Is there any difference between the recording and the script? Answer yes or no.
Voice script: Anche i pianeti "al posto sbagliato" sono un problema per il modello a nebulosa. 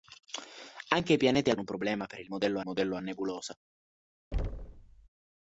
yes